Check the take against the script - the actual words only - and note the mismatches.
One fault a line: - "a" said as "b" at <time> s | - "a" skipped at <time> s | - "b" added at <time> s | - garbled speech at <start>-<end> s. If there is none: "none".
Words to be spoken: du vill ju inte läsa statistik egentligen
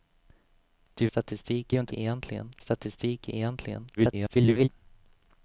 - "vill" said as "statistik" at 1.0 s
- "läsa" said as "egentligen" at 1.9 s
- garbled speech at 4.0-4.7 s